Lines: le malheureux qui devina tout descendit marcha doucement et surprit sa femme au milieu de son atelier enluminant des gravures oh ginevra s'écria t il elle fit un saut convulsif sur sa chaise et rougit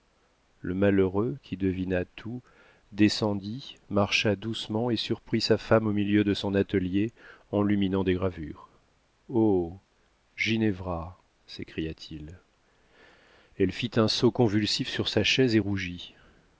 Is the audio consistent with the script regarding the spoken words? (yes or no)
yes